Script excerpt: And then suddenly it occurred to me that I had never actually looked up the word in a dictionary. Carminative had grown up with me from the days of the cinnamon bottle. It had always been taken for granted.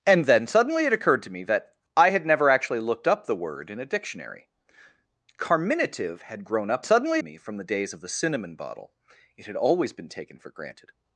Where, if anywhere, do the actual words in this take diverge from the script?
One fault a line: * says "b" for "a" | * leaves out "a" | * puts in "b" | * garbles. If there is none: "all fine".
* says "suddenly" for "with"